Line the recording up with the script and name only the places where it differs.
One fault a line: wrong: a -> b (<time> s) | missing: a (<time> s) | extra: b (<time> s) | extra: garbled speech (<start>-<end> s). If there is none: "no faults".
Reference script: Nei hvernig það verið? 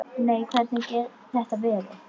no faults